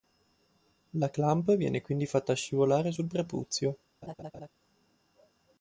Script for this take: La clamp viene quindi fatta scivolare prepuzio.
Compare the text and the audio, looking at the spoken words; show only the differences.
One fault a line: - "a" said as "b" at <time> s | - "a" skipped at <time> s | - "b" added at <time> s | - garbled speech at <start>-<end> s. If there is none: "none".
- "sul" added at 2.9 s